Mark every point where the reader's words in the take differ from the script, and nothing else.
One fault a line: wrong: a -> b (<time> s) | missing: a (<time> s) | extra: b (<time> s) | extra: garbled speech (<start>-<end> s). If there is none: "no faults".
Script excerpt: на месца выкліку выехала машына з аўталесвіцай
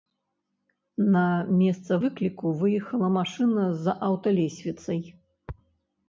no faults